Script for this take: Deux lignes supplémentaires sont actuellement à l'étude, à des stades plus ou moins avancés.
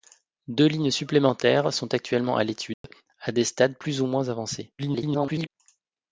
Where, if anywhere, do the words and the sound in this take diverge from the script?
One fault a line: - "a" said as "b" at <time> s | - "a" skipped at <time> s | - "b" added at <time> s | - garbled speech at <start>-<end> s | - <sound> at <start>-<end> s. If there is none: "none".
- dropout at 2.7-2.8 s
- garbled speech at 4.8-5.5 s